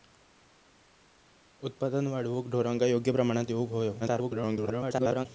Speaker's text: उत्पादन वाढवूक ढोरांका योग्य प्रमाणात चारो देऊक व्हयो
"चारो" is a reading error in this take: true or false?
true